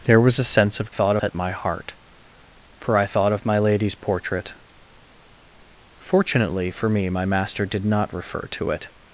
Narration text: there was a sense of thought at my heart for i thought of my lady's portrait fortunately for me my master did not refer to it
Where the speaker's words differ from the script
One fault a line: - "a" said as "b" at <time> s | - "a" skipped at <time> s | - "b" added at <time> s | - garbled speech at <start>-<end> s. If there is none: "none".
none